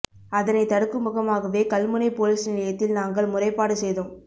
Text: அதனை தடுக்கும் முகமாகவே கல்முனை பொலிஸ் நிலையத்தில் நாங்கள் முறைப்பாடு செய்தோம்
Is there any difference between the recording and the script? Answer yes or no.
no